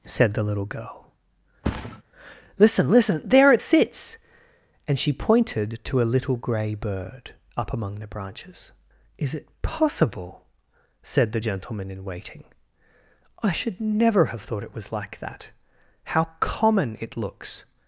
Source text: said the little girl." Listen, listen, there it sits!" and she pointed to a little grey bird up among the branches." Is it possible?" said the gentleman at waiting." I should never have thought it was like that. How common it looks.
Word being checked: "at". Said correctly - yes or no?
no